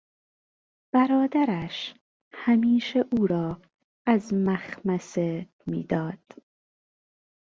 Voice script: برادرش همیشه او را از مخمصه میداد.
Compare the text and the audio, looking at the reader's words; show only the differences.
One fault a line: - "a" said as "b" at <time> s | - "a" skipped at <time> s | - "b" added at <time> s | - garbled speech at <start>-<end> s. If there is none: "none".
none